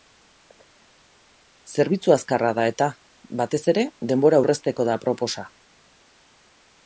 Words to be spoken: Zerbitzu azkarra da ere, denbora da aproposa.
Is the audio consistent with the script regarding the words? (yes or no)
no